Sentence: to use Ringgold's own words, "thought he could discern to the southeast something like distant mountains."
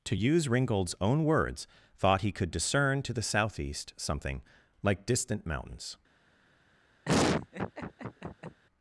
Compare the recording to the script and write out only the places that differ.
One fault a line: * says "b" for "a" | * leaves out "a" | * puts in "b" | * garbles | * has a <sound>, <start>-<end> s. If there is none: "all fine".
* has a laugh, 7.0-8.6 s